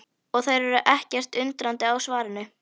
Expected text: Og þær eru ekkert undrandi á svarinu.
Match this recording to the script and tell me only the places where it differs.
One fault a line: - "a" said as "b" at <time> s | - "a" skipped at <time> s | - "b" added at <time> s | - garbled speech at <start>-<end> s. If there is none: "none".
none